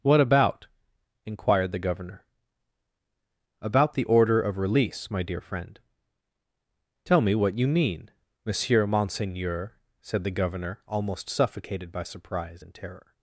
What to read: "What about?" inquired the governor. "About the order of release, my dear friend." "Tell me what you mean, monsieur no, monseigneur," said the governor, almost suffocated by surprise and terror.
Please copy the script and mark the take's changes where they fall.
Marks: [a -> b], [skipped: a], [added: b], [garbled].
"What about?" inquired the governor. "About the order of release, my dear friend." "Tell me what you mean, monsieur [skipped: no,] monseigneur," said the governor, almost suffocated by surprise and terror.